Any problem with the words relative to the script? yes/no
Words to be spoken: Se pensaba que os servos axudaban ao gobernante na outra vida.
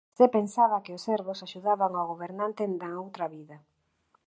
no